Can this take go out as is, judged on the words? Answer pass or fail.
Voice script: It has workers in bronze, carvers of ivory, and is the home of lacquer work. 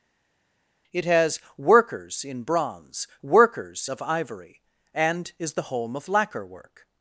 fail